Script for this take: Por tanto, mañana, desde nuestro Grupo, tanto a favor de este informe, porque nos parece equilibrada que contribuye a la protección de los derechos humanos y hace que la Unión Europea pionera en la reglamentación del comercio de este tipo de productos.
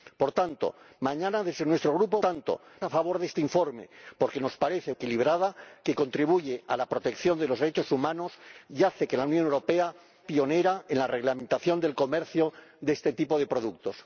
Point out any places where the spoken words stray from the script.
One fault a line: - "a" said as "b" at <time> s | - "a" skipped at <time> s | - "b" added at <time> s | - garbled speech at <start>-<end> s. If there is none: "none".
none